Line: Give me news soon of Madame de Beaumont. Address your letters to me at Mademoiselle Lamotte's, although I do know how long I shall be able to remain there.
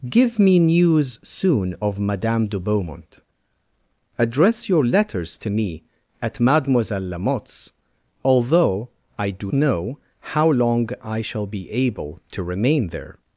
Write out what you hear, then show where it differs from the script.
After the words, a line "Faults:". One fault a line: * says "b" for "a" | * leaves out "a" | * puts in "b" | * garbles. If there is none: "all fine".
Give me news soon of Madame de Beaumont. Address your letters to me at Mademoiselle Lamotte's, although I do know how long I shall be able to remain there.
Faults:
all fine